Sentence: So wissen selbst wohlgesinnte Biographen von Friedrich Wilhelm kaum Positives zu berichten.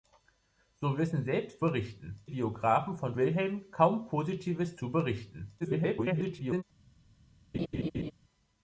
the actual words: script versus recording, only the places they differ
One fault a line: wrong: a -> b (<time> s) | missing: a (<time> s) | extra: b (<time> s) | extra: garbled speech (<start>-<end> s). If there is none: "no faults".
wrong: wohlgesinnte -> berichten (1.6 s)
missing: Friedrich (3.1 s)
extra: garbled speech (5.6-6.6 s)